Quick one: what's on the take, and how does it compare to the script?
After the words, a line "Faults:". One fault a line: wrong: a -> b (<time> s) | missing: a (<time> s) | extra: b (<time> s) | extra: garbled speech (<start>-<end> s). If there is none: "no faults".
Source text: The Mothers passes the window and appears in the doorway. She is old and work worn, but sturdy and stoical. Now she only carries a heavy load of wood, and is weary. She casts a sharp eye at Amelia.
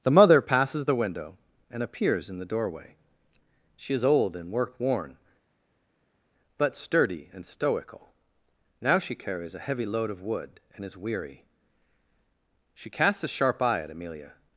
The Mother passes the window and appears in the doorway. She is old and work worn, but sturdy and stoical. Now she carries a heavy load of wood, and is weary. She casts a sharp eye at Amelia.
Faults:
wrong: Mothers -> Mother (0.1 s)
missing: only (9.1 s)